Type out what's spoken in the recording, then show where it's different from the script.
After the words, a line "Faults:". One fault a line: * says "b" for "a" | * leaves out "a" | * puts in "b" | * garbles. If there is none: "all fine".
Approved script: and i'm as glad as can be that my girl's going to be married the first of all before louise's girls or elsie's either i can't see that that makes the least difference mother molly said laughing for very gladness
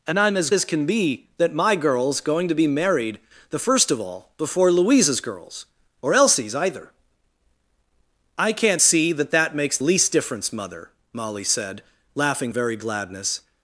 and i'm as as can be that my girl's going to be married the first of all before louise's girls or elsie's either i can't see that that makes least difference mother molly said laughing very gladness
Faults:
* leaves out "glad"
* leaves out "the"
* leaves out "for"